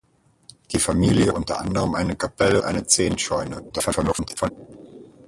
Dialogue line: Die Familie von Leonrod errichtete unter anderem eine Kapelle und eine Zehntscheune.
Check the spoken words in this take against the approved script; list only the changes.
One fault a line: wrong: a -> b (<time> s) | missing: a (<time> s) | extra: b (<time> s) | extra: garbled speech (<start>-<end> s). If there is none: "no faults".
missing: von Leonrod errichtete (1.3 s)
missing: und (2.6 s)
extra: garbled speech (3.7-4.5 s)